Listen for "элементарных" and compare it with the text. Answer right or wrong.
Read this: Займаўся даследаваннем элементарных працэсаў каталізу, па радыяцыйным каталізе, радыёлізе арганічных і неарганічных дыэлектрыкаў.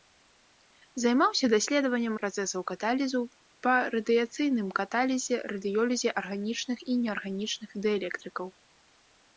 wrong